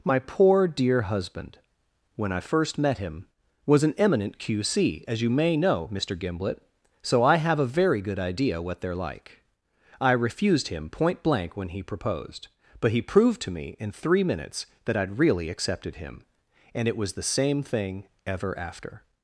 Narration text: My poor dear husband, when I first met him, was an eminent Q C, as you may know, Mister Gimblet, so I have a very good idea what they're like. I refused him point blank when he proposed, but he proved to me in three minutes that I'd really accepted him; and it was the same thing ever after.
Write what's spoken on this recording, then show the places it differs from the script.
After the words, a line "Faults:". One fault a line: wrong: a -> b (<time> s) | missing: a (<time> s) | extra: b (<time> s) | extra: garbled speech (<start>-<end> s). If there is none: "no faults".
My poor dear husband, when I first met him, was an eminent Q C, as you may know, Mister Gimblet, so I have a very good idea what they're like. I refused him point blank when he proposed, but he proved to me in three minutes that I'd really accepted him; and it was the same thing ever after.
Faults:
no faults